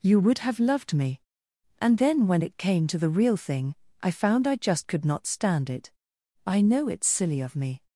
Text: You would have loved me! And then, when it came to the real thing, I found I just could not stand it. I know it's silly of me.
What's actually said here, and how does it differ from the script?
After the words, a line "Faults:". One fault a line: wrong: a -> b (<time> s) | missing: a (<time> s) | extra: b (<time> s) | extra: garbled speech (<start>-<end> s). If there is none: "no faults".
You would have loved me! And then, when it came to the real thing, I found I just could not stand it. I know it's silly of me.
Faults:
no faults